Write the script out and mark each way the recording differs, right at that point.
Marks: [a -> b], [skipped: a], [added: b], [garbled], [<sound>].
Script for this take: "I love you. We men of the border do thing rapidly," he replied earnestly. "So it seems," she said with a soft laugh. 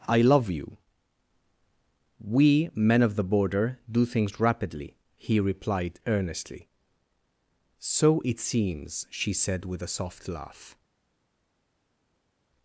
"I love you. We men of the border do [thing -> things] rapidly," he replied earnestly. "So it seems," she said with a soft laugh.